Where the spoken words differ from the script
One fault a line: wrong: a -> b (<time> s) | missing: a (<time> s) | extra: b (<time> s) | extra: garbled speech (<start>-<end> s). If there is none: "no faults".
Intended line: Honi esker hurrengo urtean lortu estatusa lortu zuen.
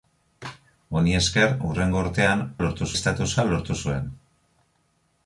no faults